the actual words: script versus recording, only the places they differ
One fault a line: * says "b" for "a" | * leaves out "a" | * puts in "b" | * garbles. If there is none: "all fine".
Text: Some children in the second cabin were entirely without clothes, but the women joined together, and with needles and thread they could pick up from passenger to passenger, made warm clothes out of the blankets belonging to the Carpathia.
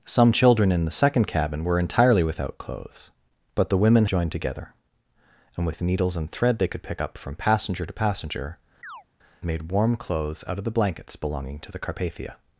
all fine